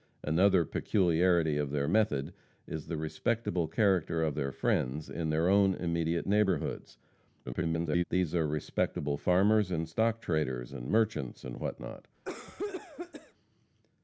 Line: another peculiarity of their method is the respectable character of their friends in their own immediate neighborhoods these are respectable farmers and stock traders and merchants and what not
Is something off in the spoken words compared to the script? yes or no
yes